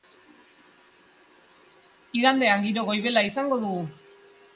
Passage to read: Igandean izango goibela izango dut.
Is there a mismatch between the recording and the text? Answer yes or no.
yes